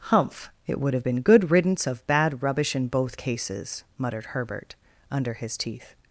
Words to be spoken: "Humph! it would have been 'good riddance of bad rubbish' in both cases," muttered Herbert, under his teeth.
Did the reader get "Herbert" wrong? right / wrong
right